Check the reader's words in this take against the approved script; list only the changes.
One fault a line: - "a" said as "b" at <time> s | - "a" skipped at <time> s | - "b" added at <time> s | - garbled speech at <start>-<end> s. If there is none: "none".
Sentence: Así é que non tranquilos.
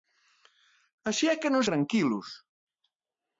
none